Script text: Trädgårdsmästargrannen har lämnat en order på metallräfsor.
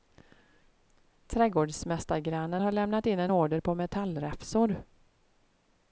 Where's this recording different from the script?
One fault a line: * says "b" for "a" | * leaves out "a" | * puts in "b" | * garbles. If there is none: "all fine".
* puts in "in"